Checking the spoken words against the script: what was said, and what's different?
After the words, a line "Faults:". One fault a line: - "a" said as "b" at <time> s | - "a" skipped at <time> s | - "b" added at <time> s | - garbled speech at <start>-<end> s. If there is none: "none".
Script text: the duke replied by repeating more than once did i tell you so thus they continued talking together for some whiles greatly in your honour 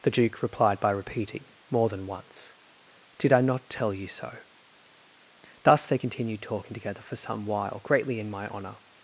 the duke replied by repeating more than once did i not tell you so thus they continued talking together for some while greatly in my honour
Faults:
- "not" added at 3.4 s
- "whiles" said as "while" at 7.5 s
- "your" said as "my" at 8.3 s